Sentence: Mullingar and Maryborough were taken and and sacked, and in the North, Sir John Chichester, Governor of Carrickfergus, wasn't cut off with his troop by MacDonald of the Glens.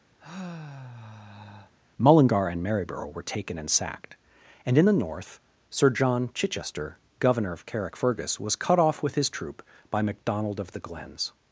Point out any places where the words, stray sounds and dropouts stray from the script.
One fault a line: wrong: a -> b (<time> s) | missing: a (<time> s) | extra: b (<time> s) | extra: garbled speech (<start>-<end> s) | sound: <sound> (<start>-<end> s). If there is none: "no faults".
sound: sigh (0.2-1.7 s)
missing: and (3.7 s)
wrong: wasn't -> was (8.4 s)